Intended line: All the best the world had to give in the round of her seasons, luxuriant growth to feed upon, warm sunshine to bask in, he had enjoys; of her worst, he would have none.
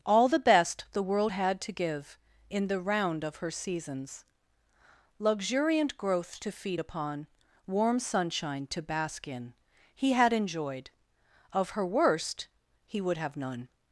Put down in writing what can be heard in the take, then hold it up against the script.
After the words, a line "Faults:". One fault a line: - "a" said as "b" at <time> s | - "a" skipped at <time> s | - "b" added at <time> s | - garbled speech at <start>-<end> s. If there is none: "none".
All the best the world had to give in the round of her seasons, luxuriant growth to feed upon, warm sunshine to bask in, he had enjoyed; of her worst, he would have none.
Faults:
- "enjoys" said as "enjoyed" at 10.3 s